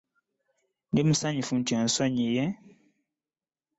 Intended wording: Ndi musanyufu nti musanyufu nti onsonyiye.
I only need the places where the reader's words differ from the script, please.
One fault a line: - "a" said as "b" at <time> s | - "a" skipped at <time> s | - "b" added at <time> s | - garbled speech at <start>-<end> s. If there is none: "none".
- "musanyufu nti" skipped at 1.7 s